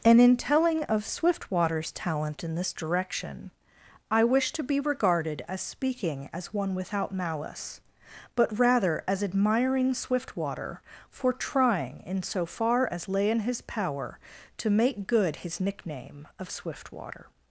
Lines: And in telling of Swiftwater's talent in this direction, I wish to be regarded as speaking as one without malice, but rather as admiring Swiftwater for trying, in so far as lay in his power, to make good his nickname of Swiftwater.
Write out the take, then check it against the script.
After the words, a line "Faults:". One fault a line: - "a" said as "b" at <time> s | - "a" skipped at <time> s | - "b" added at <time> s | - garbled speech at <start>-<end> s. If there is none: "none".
And in telling of Swiftwater's talent in this direction, I wish to be regarded as speaking as one without malice, but rather as admiring Swiftwater for trying, in so far as lay in his power, to make good his nickname of Swiftwater.
Faults:
none